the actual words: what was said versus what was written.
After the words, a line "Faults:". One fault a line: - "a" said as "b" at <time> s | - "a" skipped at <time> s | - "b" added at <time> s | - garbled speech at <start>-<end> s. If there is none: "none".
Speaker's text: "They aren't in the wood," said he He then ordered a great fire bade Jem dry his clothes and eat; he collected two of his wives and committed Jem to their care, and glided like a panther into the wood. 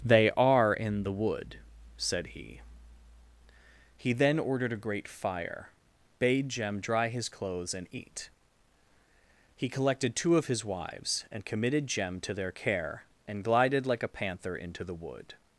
"They are in the wood," said he He then ordered a great fire bade Jem dry his clothes and eat; he collected two of his wives and committed Jem to their care, and glided like a panther into the wood.
Faults:
- "aren't" said as "are" at 0.3 s